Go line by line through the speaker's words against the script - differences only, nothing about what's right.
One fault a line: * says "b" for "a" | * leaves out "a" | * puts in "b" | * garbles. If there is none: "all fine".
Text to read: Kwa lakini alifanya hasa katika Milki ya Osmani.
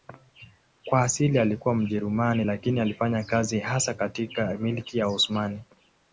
* puts in "asili alikuwa Mjerumani"
* puts in "kazi"